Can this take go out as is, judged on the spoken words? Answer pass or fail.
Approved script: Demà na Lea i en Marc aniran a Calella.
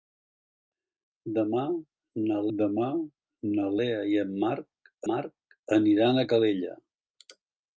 fail